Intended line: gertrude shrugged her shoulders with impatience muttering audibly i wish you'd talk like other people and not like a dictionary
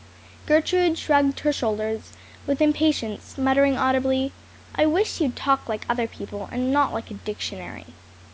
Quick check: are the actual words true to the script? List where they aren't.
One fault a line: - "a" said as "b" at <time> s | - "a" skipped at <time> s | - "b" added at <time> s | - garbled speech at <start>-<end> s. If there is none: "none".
none